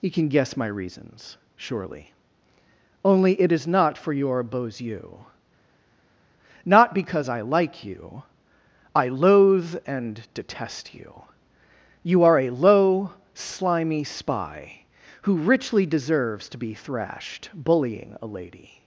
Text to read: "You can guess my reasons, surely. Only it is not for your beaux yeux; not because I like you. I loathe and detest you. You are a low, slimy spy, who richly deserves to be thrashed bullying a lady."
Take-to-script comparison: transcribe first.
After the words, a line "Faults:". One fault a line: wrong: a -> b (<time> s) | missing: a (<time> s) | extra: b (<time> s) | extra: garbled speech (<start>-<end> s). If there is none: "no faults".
"You can guess my reasons, surely. Only it is not for your beaux yeux; not because I like you. I loathe and detest you. You are a low, slimy spy, who richly deserves to be thrashed bullying a lady."
Faults:
no faults